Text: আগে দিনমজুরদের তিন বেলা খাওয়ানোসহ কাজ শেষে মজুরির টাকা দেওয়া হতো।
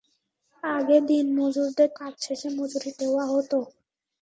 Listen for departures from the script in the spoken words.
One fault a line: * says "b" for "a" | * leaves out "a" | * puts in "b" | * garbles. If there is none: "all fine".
* leaves out "তিন বেলা খাওয়ানোসহ"
* leaves out "টাকা"